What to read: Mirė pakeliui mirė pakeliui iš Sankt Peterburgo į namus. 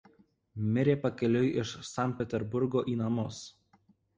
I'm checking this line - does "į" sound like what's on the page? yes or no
yes